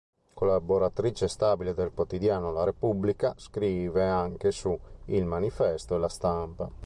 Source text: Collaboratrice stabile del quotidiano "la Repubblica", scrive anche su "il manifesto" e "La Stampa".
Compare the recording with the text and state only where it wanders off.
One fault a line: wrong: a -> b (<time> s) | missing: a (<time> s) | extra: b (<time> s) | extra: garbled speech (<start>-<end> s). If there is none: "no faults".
no faults